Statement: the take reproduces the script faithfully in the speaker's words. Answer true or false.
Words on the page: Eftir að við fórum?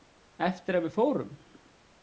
true